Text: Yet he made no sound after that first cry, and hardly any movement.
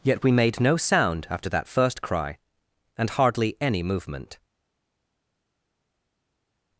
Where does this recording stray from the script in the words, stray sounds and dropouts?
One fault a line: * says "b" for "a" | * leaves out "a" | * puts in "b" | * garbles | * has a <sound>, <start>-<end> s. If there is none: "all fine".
* says "we" for "he"